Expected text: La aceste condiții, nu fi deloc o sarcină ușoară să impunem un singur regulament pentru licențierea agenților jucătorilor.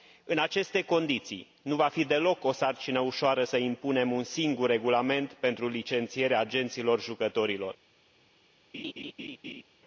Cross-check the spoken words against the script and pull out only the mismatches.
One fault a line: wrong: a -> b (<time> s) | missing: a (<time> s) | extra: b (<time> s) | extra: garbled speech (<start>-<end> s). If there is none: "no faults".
wrong: La -> În (0.2 s)
extra: va (1.8 s)